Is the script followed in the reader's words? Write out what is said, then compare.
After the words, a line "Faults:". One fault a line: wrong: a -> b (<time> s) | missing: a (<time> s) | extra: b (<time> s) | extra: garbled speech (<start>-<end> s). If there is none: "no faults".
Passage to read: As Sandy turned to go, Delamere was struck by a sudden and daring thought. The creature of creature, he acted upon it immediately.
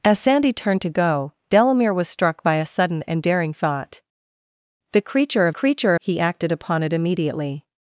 As Sandy turned to go, Delamere was struck by a sudden and daring thought. The creature of creature, he acted upon it immediately.
Faults:
no faults